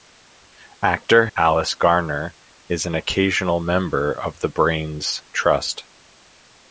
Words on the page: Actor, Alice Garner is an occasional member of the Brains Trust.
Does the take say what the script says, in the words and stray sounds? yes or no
yes